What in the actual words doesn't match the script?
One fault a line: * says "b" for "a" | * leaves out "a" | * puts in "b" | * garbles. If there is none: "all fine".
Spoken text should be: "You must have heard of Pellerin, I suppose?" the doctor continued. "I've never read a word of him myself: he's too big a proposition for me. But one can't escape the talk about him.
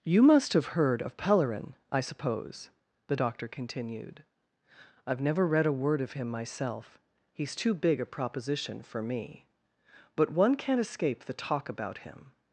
all fine